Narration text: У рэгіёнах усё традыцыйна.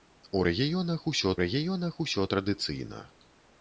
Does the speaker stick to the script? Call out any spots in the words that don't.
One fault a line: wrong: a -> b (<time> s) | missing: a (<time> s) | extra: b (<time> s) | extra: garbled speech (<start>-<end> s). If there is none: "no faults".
extra: рэгіёнах усё (1.4 s)